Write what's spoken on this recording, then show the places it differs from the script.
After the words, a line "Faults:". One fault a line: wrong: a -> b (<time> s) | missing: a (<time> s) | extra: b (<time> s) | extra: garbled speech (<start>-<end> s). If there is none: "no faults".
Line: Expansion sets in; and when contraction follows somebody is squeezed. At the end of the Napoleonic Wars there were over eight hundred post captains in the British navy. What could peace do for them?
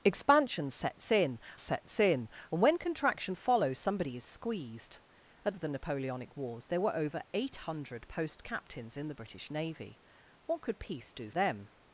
Expansion sets in sets in; and when contraction follows somebody is squeezed. At of the Napoleonic Wars there were over eight hundred post captains in the British navy. What could peace do them?
Faults:
extra: sets in (1.6 s)
missing: the end (5.5 s)
missing: for (11.3 s)